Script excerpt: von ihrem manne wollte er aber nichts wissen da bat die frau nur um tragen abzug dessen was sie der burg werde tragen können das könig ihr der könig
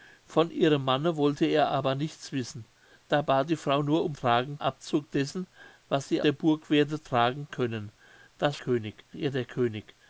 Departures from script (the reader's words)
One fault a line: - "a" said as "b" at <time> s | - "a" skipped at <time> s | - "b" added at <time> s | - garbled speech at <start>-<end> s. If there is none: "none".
none